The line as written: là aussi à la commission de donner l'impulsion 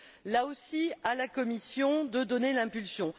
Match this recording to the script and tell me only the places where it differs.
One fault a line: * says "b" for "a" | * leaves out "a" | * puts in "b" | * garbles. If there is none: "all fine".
all fine